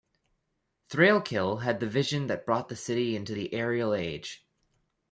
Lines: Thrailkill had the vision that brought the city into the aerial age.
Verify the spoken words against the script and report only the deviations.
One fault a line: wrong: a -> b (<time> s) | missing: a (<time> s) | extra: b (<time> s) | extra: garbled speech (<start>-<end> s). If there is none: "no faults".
no faults